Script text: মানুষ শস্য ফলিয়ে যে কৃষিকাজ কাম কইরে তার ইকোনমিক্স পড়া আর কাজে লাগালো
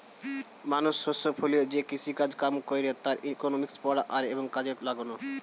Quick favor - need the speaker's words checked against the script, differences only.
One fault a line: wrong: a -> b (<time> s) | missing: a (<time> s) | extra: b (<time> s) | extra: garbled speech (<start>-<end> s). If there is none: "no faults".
extra: এবং (4.3 s)